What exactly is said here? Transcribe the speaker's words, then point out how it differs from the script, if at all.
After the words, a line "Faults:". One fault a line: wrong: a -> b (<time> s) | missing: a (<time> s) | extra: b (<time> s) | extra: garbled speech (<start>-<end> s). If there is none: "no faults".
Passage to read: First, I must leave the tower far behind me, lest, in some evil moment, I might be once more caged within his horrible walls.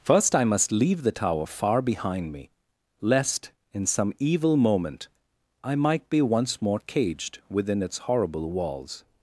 First, I must leave the tower far behind me, lest, in some evil moment, I might be once more caged within its horrible walls.
Faults:
wrong: his -> its (7.8 s)